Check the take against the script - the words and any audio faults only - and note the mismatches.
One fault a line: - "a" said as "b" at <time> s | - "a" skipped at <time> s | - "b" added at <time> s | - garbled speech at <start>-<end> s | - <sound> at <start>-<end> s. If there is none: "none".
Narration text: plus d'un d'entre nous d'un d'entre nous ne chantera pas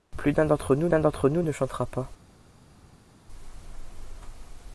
none